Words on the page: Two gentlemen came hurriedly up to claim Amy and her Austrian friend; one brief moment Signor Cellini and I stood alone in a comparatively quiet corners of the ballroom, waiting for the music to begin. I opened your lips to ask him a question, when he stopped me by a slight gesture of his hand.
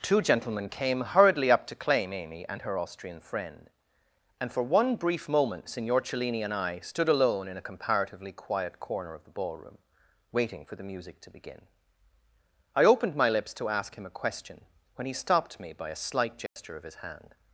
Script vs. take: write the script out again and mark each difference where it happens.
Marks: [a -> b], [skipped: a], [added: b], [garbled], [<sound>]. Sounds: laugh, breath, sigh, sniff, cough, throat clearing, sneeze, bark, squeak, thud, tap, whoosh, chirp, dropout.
Two gentlemen came hurriedly up to claim Amy and her Austrian friend; [added: and for] one brief moment Signor Cellini and I stood alone in a comparatively quiet [corners -> corner] of the ballroom, waiting for the music to begin. I opened [your -> my] lips to ask him a question, when he stopped me by a slight gesture [dropout] of his hand.